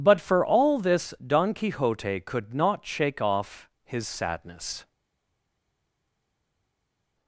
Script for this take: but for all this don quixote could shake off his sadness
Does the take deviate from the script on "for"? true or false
false